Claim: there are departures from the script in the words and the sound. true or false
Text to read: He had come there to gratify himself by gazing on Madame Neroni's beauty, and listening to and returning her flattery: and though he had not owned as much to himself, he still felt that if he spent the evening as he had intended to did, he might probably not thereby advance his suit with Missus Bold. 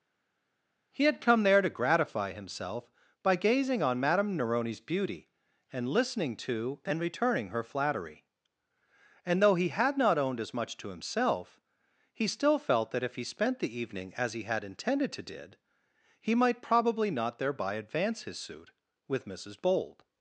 false